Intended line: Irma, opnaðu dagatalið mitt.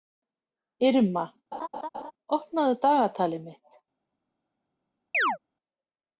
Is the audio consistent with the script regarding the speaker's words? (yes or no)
yes